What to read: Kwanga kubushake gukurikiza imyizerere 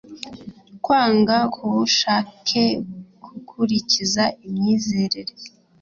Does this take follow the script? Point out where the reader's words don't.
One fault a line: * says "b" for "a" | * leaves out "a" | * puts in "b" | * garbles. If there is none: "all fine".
all fine